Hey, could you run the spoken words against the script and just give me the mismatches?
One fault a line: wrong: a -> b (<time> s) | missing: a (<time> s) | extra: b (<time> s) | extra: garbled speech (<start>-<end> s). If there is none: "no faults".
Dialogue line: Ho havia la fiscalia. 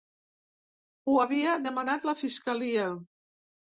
extra: demanat (1.7 s)